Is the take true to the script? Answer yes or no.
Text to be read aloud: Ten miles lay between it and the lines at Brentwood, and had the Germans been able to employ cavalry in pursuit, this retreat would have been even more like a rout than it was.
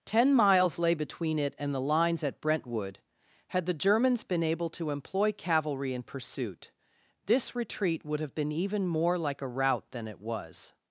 no